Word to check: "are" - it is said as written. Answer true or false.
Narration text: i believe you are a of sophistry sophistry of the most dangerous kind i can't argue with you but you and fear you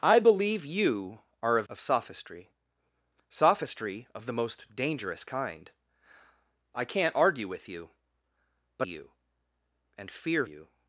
true